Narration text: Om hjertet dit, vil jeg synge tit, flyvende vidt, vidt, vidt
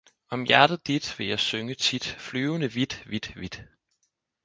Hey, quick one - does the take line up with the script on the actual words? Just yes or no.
yes